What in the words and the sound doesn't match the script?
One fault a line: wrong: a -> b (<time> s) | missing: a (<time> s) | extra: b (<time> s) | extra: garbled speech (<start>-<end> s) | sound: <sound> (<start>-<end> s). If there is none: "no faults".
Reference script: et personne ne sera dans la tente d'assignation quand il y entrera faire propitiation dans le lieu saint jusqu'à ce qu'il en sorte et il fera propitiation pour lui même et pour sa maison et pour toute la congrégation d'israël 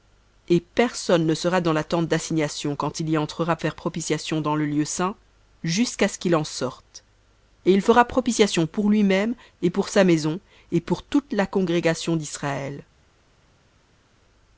no faults